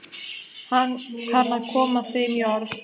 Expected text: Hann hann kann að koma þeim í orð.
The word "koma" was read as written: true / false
true